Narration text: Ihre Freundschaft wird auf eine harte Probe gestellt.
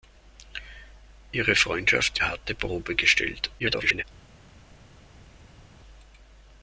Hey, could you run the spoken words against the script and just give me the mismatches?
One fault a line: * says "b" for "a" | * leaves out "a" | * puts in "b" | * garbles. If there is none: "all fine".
* leaves out "wird auf eine"
* garbles